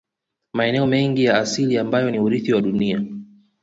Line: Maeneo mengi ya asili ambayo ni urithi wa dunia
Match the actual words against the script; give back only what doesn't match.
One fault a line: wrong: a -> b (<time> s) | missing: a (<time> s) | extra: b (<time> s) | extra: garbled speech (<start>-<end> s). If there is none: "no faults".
no faults